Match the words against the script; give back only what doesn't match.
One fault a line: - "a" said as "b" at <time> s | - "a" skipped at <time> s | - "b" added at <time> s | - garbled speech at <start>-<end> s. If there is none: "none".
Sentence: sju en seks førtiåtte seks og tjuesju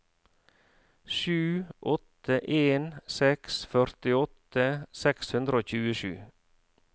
- "åtte" added at 1.9 s
- "hundre" added at 5.4 s